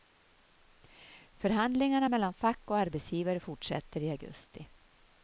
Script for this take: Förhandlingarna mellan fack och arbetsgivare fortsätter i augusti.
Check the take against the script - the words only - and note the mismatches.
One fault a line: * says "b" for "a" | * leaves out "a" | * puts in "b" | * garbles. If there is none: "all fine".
all fine